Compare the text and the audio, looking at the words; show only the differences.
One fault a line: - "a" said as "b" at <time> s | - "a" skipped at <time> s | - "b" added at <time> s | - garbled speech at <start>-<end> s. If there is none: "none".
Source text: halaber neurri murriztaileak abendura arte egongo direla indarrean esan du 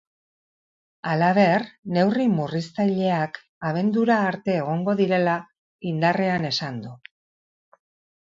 none